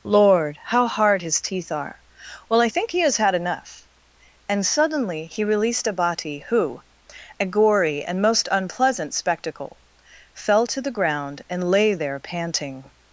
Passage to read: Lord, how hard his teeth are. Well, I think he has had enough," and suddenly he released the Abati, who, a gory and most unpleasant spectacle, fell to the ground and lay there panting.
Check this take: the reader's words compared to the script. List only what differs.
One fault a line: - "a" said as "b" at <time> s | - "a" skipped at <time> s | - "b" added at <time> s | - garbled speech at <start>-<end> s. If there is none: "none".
- "the" skipped at 5.9 s